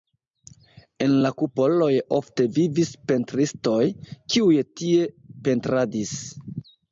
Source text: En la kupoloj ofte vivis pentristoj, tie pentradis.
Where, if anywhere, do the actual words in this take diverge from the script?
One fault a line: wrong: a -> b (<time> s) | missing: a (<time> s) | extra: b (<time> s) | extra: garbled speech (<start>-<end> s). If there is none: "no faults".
extra: kiuj (4.4 s)